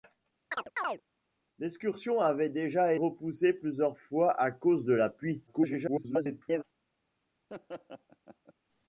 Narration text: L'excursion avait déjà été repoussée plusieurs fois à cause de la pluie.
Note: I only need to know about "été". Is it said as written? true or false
false